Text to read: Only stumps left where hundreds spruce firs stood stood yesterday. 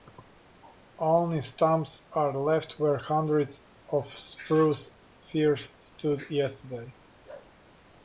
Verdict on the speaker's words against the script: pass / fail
fail